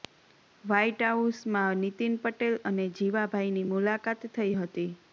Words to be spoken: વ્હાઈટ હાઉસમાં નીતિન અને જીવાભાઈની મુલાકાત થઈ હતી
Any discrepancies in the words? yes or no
yes